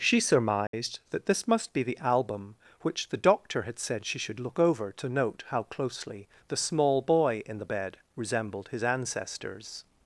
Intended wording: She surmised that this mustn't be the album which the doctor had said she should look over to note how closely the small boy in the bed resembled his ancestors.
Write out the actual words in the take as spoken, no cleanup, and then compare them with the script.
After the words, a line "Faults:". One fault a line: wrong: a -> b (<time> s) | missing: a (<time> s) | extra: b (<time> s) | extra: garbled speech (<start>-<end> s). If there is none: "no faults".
She surmised that this must be the album which the doctor had said she should look over to note how closely the small boy in the bed resembled his ancestors.
Faults:
wrong: mustn't -> must (1.5 s)